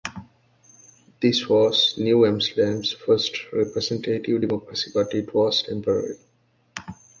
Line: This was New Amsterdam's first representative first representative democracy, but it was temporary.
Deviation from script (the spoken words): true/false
true